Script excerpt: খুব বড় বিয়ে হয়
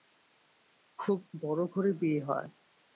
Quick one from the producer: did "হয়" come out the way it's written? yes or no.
yes